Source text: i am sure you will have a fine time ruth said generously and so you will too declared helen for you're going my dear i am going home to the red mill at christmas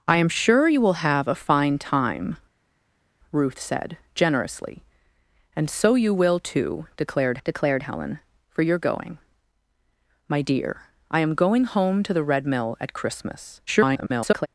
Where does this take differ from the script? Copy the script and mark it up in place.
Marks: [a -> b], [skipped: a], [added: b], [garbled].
i am sure you will have a fine time ruth said generously and so you will too declared [added: declared] helen for you're going my dear i am going home to the red mill at christmas [garbled]